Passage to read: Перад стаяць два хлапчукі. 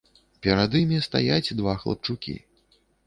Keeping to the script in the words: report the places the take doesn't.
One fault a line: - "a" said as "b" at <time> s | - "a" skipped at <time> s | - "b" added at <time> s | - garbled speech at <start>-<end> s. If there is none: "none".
- "імі" added at 0.8 s